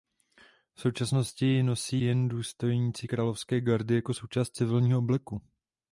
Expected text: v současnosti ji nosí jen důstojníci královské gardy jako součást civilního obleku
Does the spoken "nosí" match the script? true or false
true